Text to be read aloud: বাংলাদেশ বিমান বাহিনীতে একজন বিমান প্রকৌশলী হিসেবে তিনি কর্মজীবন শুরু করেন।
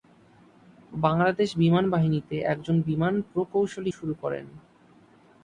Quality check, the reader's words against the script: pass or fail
fail